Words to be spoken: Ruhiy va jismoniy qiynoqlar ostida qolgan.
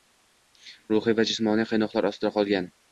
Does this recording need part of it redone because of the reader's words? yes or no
no